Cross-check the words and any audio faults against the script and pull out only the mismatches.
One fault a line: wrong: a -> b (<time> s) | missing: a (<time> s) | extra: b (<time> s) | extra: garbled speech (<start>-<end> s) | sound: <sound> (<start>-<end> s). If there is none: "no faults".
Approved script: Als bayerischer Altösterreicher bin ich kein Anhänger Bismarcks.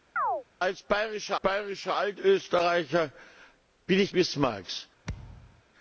sound: chirp (0.2-0.4 s)
extra: bayerischer (1.4 s)
missing: kein Anhänger (4.1 s)
sound: thud (5.0-5.6 s)